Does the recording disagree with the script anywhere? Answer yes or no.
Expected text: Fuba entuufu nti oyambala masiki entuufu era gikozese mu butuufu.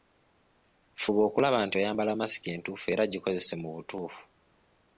yes